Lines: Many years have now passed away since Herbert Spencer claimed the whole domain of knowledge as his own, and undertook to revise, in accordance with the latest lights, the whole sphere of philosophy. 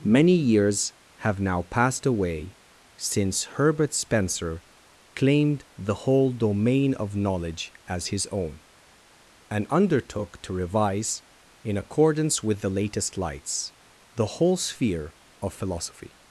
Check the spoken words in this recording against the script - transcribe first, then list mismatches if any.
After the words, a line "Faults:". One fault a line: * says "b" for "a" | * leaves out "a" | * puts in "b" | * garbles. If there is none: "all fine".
Many years have now passed away since Herbert Spencer claimed the whole domain of knowledge as his own, and undertook to revise, in accordance with the latest lights, the whole sphere of philosophy.
Faults:
all fine